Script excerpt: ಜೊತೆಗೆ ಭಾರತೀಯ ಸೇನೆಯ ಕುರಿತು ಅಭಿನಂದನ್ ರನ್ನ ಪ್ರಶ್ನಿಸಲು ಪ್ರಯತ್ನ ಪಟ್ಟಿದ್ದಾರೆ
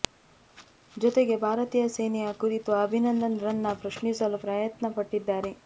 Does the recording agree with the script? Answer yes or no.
yes